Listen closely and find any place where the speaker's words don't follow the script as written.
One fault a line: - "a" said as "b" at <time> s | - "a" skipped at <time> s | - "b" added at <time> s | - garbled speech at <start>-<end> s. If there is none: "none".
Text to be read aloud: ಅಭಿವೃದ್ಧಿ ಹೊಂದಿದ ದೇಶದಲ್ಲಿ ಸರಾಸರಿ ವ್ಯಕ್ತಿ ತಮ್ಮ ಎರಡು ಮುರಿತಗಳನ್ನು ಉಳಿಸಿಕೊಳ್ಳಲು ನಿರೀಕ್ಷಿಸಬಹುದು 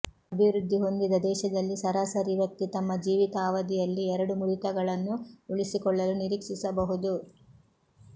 - "ಜೀವಿತಾವಧಿಯಲ್ಲಿ" added at 3.0 s